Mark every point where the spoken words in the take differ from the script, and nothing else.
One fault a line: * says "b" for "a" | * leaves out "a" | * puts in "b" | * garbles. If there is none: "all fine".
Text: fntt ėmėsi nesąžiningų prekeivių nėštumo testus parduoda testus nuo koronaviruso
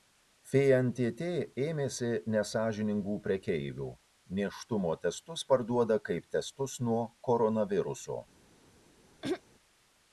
* puts in "kaip"